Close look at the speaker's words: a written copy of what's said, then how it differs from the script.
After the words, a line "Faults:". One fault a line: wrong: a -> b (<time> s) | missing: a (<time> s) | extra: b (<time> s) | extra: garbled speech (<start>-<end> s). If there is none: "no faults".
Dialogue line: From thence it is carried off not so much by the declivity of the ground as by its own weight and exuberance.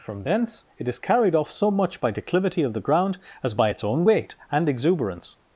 From thence it is carried off so much by declivity of the ground as by its own weight and exuberance.
Faults:
missing: not (1.5 s)
missing: the (2.1 s)